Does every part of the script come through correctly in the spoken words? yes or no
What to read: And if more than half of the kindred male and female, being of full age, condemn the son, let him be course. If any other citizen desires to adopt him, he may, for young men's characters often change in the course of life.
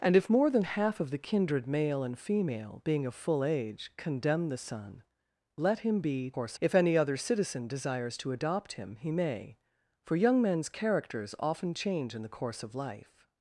yes